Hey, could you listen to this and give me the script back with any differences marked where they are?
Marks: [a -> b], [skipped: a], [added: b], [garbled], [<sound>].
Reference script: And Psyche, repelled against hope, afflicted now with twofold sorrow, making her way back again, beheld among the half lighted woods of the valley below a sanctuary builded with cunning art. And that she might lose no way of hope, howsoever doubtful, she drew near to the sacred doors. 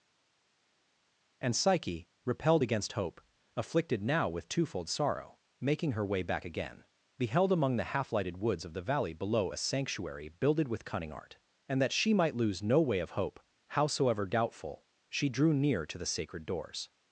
And Psyche, repelled against hope, afflicted now with twofold sorrow, making her way back again, beheld among the half lighted woods of the valley below a sanctuary builded with cunning art. And that she might lose no way of hope, howsoever doubtful, she drew near to the sacred doors.